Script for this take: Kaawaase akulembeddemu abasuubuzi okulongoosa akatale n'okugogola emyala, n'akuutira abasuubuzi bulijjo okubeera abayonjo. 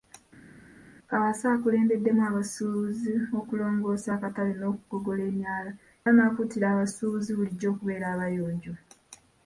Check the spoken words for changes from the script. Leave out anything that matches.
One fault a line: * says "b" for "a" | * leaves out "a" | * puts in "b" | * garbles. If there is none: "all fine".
all fine